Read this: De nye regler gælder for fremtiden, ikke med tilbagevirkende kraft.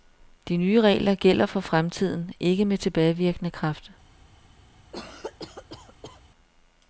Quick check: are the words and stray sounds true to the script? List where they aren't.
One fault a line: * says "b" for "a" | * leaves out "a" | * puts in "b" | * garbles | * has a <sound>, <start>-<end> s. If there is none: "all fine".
* has a cough, 4.9-6.2 s